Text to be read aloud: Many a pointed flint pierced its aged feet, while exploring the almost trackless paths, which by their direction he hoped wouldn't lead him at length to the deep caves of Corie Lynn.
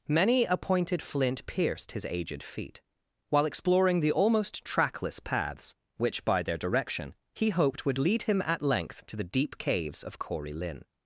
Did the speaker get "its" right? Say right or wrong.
wrong